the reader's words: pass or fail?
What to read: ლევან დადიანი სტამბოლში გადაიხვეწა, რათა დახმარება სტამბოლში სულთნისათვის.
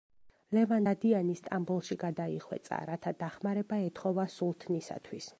fail